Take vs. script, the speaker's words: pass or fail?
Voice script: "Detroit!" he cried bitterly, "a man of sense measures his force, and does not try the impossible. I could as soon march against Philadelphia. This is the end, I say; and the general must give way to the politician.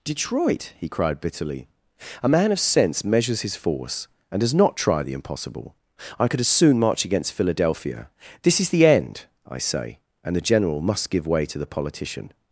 pass